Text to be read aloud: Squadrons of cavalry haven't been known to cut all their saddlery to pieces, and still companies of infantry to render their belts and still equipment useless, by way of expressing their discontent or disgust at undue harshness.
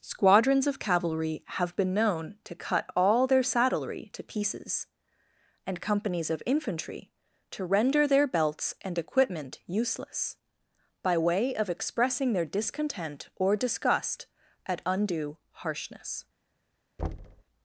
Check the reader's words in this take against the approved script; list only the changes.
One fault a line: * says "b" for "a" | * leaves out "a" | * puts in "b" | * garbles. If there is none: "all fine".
* says "have" for "haven't"
* leaves out "still"
* leaves out "still"